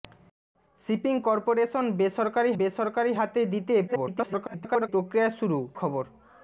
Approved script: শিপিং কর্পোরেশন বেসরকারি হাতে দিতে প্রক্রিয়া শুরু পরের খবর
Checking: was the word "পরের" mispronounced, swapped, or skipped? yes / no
yes